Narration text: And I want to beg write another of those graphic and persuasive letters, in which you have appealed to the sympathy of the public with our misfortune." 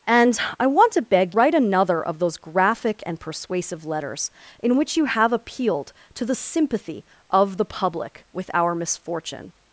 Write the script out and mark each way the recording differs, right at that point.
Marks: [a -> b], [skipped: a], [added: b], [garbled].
And I want to beg write another of those graphic and persuasive letters, in which you have appealed to the sympathy of the public with our misfortune."